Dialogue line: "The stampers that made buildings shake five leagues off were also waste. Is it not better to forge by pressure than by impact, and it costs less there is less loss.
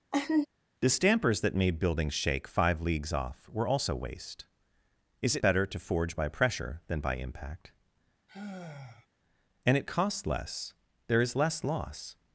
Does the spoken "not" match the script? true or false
false